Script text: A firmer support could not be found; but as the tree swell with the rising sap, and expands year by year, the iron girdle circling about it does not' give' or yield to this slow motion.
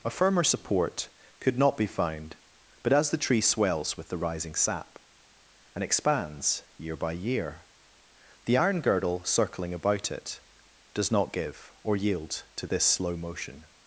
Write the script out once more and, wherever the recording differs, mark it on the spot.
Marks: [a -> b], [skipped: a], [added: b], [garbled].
A firmer support could not be found; but as the tree [swell -> swells] with the rising sap, and expands year by year, the iron girdle circling about it does not' give' or yield to this slow motion.